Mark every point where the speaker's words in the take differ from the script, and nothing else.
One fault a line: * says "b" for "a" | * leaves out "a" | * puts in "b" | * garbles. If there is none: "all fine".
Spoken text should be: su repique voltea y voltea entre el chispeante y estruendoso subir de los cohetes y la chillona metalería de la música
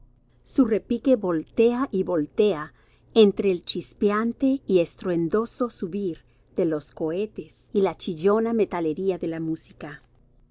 all fine